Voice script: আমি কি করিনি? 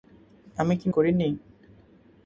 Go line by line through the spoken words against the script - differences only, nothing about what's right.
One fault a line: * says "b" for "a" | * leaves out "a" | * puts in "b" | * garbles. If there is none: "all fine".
all fine